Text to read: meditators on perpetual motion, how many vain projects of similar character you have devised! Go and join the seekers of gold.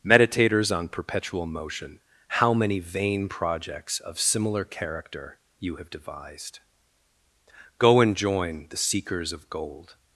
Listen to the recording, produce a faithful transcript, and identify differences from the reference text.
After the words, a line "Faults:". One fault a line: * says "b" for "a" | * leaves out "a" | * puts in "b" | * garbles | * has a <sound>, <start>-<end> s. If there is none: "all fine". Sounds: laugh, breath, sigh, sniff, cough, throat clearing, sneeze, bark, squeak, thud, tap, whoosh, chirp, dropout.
meditators on perpetual motion, how many vain projects of similar character you have devised! Go and join the seekers of gold.
Faults:
all fine